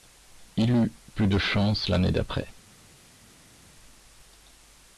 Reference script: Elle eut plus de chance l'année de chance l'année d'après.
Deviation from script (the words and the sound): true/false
true